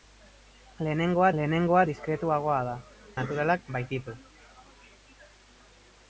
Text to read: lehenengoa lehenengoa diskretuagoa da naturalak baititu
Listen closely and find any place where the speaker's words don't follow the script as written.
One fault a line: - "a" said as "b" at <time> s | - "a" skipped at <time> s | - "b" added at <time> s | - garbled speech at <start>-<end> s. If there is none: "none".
none